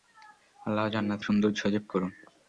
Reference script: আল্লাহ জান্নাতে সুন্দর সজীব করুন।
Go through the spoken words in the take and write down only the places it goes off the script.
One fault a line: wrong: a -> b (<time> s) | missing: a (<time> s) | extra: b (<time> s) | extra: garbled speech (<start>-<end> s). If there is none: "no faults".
no faults